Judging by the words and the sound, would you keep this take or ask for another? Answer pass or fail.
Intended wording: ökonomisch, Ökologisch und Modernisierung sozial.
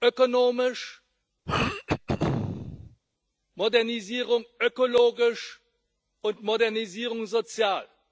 fail